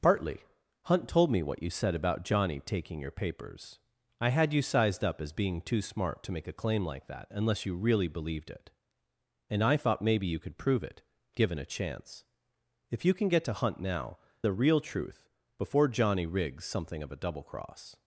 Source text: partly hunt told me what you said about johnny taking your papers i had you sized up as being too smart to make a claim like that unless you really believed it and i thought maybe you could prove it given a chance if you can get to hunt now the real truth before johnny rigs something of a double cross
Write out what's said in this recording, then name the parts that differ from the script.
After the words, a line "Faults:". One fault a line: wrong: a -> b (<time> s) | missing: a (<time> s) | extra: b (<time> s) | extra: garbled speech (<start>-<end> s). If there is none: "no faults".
partly hunt told me what you said about johnny taking your papers i had you sized up as being too smart to make a claim like that unless you really believed it and i thought maybe you could prove it given a chance if you can get to hunt now the real truth before johnny rigs something of a double cross
Faults:
no faults